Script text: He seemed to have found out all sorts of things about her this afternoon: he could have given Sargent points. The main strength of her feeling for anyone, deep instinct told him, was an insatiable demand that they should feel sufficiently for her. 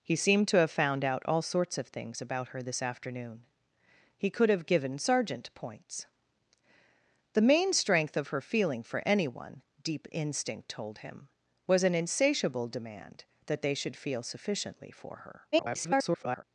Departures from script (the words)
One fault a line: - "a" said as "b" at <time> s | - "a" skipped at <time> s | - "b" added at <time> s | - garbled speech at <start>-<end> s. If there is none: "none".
- garbled speech at 15.5-16.4 s